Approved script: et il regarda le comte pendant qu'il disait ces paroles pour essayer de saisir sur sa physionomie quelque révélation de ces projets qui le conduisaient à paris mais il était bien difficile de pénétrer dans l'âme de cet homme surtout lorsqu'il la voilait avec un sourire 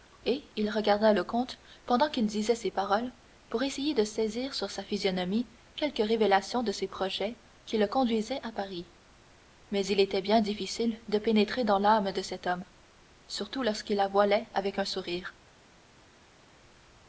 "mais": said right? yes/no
yes